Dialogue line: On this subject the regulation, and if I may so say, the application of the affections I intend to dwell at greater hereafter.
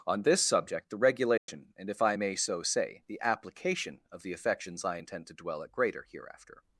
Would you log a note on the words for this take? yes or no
no